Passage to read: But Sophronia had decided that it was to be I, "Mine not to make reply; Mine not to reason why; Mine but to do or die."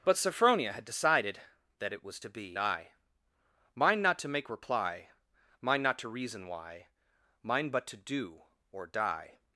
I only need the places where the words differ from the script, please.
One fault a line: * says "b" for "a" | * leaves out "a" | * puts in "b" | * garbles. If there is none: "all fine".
all fine